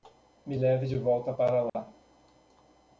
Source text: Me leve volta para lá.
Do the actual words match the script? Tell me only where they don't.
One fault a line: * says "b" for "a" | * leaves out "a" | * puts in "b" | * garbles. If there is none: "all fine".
* puts in "de"